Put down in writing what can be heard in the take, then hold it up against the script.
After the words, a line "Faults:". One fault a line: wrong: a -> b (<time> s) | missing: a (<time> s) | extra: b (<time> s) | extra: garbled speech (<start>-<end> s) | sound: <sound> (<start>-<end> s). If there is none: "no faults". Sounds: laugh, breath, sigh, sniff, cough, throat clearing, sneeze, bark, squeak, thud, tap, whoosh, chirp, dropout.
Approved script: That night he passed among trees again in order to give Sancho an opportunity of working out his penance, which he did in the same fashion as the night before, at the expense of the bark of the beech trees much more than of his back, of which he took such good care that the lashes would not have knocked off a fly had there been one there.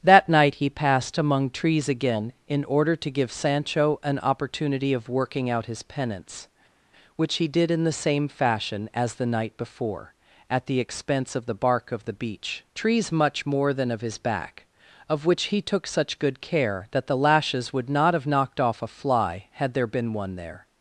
That night he passed among trees again in order to give Sancho an opportunity of working out his penance, which he did in the same fashion as the night before, at the expense of the bark of the beech trees much more than of his back, of which he took such good care that the lashes would not have knocked off a fly had there been one there.
Faults:
no faults